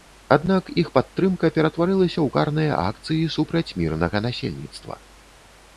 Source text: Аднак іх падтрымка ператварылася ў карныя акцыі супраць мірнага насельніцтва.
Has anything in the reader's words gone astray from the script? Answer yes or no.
no